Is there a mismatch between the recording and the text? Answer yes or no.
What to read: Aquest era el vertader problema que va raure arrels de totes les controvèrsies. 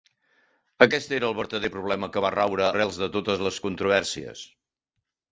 no